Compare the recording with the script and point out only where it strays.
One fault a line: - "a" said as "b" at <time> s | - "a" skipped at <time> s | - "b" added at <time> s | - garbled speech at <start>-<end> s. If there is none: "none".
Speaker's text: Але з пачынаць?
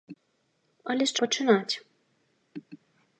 none